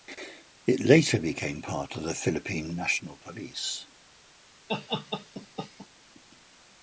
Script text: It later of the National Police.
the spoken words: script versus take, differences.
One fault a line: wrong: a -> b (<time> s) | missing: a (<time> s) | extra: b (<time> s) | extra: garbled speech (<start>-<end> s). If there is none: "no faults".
extra: became part (1.2 s)
extra: Philippine (2.1 s)